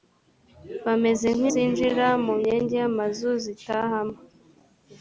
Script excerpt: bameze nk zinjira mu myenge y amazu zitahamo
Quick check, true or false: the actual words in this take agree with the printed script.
true